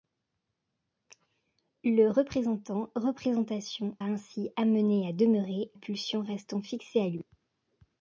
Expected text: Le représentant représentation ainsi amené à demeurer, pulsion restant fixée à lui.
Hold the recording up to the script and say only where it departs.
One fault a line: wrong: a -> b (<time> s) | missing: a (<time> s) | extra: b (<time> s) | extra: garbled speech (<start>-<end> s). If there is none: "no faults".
no faults